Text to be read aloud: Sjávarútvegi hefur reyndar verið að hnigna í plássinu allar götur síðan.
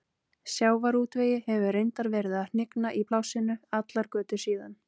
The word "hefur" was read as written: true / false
true